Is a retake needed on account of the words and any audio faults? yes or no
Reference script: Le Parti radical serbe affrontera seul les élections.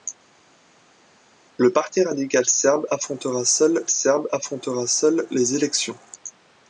yes